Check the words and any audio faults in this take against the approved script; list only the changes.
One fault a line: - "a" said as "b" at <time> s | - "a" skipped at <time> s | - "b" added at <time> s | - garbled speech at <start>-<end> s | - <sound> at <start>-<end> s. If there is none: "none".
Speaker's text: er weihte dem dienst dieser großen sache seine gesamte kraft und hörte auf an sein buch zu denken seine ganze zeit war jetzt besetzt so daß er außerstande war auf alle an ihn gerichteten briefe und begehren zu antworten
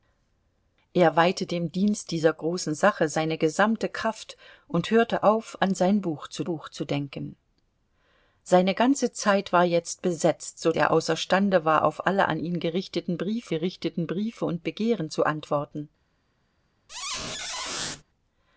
- "buch zu" added at 6.4 s
- "daß" skipped at 10.7 s
- "gerichteten briefe" added at 13.5 s
- squeak at 16.9-18.0 s